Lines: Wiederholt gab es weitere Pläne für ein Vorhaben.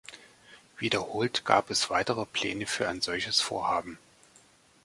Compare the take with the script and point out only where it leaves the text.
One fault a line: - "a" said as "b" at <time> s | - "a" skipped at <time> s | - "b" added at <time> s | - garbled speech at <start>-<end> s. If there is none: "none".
- "solches" added at 3.0 s